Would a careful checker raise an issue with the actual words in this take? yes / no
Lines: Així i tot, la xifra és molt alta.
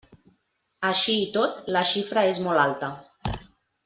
no